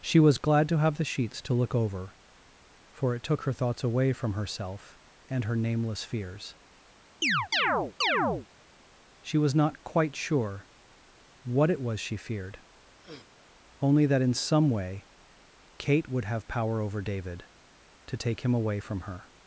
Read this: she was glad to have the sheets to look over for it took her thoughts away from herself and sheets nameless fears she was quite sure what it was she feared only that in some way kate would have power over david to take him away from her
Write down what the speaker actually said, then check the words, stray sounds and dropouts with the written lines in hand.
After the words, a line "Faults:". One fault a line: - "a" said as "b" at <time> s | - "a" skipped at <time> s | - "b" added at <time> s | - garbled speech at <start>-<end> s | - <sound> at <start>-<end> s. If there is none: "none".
she was glad to have the sheets to look over for it took her thoughts away from herself and her nameless fears she was not quite sure what it was she feared only that in some way kate would have power over david to take him away from her
Faults:
- "sheets" said as "her" at 5.4 s
- chirp at 7.2-8.5 s
- "not" added at 9.5 s
- sniff at 13.0-13.3 s